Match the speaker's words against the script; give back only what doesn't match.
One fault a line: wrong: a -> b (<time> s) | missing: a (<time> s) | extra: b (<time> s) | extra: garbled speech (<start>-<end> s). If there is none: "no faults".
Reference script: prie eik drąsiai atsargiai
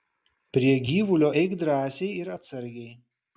extra: gyvulio (0.9 s)
extra: ir (2.2 s)